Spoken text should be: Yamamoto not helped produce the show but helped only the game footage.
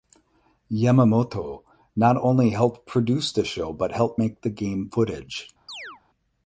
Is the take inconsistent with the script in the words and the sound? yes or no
yes